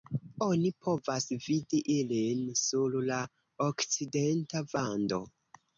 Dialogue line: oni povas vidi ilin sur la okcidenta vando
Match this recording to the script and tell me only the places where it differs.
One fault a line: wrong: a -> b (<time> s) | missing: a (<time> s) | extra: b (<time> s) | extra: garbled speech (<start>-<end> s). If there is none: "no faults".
no faults